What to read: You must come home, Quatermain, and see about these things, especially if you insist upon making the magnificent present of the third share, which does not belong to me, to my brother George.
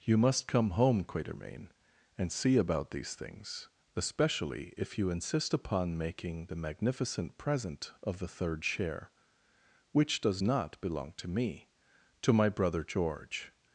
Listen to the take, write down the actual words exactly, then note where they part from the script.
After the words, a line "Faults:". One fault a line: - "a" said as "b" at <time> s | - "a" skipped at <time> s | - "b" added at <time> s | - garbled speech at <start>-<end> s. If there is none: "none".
You must come home, Quatermain, and see about these things, especially if you insist upon making the magnificent present of the third share, which does not belong to me, to my brother George.
Faults:
none